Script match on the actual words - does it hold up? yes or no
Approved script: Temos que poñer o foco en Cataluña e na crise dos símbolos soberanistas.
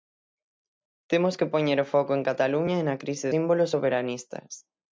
no